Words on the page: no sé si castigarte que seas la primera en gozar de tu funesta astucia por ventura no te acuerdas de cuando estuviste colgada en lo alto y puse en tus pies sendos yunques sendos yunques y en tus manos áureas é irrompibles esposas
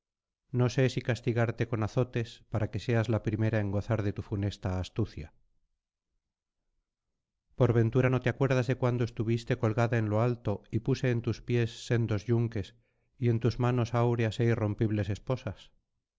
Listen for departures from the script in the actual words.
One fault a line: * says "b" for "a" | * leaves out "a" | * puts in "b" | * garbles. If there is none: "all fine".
* puts in "con azotes para"
* leaves out "sendos yunques"